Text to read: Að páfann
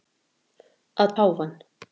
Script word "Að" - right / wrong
right